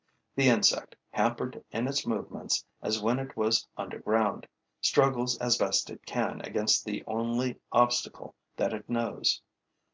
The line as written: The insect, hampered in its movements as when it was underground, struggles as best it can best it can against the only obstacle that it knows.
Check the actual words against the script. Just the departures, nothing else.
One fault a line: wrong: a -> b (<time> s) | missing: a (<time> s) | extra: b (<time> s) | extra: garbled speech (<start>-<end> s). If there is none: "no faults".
missing: best it can (6.4 s)